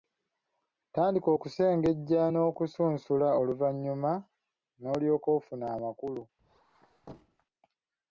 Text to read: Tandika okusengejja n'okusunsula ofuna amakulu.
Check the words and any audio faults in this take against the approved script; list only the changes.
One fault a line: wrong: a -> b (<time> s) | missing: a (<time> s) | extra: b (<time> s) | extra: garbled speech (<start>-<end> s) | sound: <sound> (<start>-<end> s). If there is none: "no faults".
extra: oluvannyuma n'olyoka (3.4 s)
sound: squeak (6.4-7.5 s)